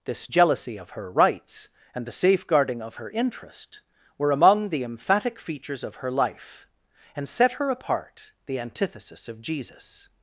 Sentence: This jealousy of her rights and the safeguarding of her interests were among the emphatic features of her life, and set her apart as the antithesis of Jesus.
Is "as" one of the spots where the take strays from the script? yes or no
yes